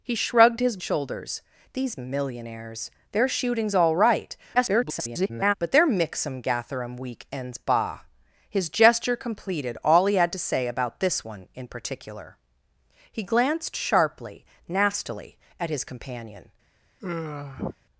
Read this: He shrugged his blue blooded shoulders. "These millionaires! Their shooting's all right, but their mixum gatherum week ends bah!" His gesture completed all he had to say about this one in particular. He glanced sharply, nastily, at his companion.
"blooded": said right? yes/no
no